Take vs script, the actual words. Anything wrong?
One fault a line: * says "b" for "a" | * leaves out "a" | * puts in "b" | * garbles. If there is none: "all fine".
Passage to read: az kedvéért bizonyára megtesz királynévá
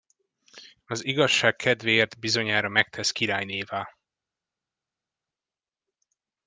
* puts in "igazság"